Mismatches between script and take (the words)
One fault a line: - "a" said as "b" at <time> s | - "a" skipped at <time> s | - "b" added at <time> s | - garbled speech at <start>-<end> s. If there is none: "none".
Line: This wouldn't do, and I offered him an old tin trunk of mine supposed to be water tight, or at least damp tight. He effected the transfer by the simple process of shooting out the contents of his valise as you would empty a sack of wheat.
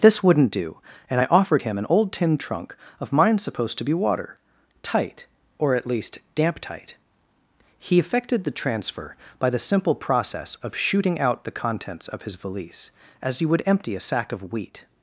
none